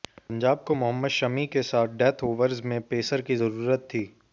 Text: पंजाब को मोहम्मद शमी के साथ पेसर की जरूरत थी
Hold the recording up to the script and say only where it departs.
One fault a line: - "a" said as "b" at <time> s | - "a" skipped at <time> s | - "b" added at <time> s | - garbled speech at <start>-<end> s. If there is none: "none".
- "डेथ ओवर्स में" added at 2.0 s